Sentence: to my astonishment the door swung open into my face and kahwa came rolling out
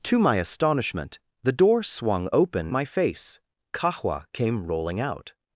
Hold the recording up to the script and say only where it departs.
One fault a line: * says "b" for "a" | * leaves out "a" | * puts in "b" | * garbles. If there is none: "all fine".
* leaves out "into"
* leaves out "and"